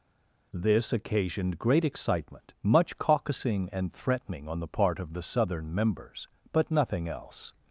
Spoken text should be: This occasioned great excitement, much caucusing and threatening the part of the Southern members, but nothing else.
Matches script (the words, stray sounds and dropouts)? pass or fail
fail